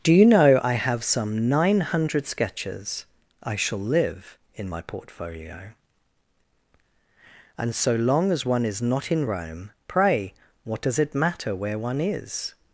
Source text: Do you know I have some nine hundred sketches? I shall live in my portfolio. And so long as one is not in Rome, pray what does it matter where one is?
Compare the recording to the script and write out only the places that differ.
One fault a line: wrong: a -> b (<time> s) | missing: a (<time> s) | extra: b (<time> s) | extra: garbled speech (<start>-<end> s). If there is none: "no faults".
no faults